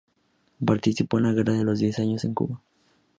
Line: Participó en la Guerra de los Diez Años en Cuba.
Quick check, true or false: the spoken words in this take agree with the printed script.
true